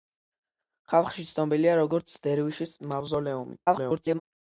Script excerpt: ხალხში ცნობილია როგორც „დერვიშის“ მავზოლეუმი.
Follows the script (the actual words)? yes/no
no